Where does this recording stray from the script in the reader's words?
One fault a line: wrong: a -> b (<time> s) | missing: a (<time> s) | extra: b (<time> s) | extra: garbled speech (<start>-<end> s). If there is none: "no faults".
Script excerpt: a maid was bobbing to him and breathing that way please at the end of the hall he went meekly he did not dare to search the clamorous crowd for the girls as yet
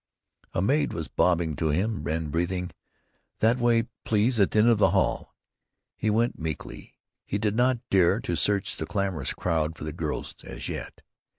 no faults